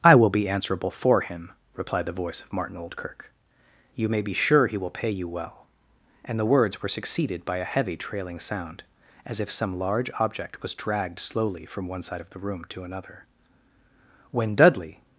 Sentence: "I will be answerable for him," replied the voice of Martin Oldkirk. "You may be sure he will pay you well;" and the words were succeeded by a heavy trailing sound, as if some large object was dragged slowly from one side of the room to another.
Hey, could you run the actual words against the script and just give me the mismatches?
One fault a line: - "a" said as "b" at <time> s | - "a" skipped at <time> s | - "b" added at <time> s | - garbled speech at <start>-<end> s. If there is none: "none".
- "When Dudley" added at 14.3 s